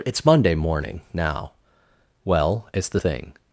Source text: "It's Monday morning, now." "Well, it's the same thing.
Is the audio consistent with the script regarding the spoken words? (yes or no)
no